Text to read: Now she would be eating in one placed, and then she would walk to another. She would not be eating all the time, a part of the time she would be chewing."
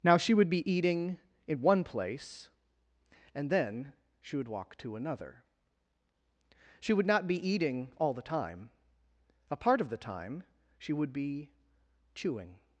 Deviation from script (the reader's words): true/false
true